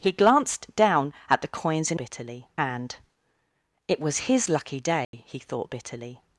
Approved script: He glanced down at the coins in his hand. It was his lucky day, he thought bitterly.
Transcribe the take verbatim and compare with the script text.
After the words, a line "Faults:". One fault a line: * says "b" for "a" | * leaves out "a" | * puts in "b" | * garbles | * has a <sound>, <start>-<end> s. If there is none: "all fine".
He glanced down at the coins in bitterly hand. It was his lucky day, he thought bitterly.
Faults:
* says "bitterly" for "his"
* has a dropout, 5.0-5.1 s